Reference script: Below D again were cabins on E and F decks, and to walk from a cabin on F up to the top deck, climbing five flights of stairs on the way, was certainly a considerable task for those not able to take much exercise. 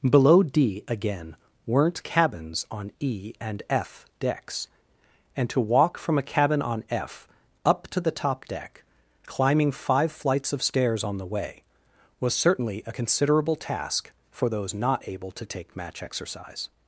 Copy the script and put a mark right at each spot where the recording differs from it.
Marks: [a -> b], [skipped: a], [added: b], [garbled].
Below D again [were -> weren't] cabins on E and F decks, and to walk from a cabin on F up to the top deck, climbing five flights of stairs on the way, was certainly a considerable task for those not able to take [much -> match] exercise.